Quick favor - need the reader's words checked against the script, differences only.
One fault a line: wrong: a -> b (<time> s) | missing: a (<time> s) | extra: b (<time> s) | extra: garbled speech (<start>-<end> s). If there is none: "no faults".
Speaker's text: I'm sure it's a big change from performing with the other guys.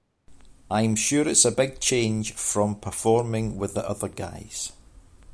no faults